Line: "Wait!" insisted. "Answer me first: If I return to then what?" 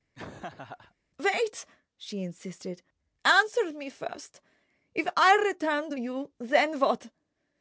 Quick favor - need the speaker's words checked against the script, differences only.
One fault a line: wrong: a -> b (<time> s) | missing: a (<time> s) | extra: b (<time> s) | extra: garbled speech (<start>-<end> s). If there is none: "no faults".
extra: she (2.0 s)
extra: you (6.0 s)